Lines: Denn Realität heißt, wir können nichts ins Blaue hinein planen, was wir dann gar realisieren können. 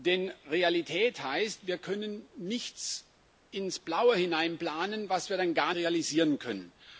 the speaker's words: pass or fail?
pass